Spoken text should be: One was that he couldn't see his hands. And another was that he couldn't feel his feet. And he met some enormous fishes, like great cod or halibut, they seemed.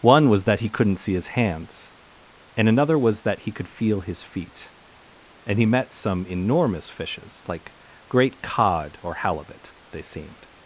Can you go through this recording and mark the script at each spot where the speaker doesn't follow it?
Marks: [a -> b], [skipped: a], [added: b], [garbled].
One was that he couldn't see his hands. And another was that he [couldn't -> could] feel his feet. And he met some enormous fishes, like great cod or halibut, they seemed.